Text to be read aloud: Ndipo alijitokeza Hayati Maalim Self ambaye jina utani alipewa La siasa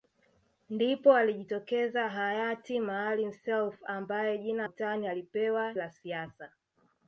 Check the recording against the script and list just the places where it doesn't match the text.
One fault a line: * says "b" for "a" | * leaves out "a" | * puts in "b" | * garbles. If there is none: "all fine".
all fine